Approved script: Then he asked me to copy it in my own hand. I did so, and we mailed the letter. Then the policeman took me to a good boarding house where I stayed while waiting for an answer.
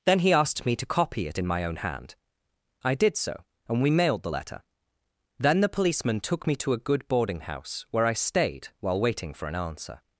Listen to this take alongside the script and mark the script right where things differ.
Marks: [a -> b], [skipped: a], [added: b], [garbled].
Then he asked me to copy it in my own hand. I did so, and we mailed the letter. Then the policeman took me to a good boarding house where I stayed while waiting for an answer.